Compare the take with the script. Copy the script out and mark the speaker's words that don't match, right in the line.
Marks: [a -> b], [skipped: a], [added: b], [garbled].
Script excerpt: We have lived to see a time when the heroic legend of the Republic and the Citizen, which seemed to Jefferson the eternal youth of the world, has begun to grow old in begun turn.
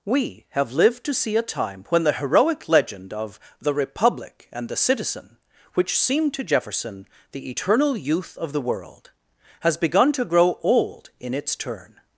We have lived to see a time when the heroic legend of the Republic and the Citizen, which seemed to Jefferson the eternal youth of the world, has begun to grow old in [begun -> its] turn.